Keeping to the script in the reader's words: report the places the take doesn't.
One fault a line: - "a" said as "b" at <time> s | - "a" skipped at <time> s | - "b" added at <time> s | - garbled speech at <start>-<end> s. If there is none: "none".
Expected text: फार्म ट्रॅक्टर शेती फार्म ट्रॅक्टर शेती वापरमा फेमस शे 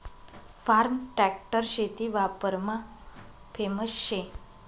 - "फार्म ट्रॅक्टर शेती" skipped at 2.1 s